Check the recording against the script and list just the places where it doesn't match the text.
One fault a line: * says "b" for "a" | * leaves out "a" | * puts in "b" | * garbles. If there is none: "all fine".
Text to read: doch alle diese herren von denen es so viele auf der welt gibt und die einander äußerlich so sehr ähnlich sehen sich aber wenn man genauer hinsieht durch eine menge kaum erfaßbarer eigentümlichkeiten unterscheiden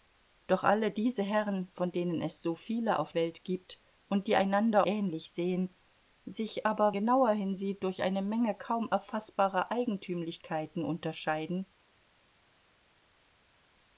* leaves out "der"
* leaves out "äußerlich so sehr"
* leaves out "wenn man"